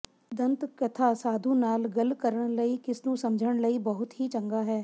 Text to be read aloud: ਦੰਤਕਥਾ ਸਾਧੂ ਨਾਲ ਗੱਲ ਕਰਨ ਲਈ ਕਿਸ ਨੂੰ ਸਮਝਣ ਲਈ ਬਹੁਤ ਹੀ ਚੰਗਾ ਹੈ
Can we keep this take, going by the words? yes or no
yes